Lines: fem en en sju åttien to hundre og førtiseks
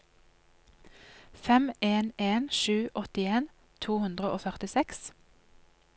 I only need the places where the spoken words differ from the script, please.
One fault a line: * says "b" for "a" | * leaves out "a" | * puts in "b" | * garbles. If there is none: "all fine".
all fine